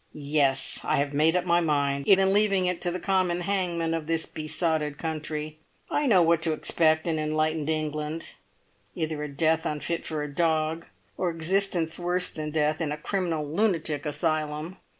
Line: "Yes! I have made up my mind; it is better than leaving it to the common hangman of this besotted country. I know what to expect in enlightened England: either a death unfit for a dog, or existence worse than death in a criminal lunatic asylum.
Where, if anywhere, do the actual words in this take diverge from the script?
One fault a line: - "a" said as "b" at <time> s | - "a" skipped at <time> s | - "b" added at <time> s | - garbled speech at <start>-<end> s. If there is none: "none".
- "is better" skipped at 2.2 s